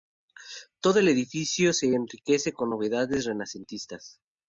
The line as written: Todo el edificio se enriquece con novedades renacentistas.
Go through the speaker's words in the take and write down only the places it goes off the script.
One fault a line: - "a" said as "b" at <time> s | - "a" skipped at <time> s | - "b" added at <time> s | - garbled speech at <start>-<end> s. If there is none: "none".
none